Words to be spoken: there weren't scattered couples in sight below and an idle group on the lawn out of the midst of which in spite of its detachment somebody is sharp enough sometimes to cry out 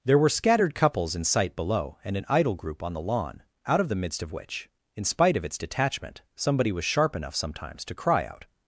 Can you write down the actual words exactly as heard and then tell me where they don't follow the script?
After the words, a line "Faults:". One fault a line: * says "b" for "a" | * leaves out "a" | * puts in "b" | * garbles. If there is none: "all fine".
there were scattered couples in sight below and an idle group on the lawn out of the midst of which in spite of its detachment somebody was sharp enough sometimes to cry out
Faults:
* says "were" for "weren't"
* says "was" for "is"